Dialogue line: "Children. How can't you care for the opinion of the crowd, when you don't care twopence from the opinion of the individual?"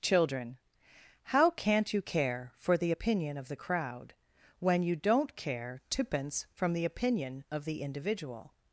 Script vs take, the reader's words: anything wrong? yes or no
no